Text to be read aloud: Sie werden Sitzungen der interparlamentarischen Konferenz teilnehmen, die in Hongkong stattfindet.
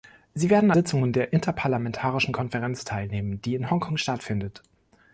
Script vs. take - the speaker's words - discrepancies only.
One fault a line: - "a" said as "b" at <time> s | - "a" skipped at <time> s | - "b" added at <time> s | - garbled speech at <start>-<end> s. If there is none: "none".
none